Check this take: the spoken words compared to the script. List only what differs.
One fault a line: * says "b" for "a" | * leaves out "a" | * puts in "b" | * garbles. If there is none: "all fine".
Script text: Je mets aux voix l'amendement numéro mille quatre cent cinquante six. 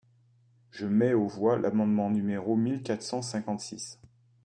all fine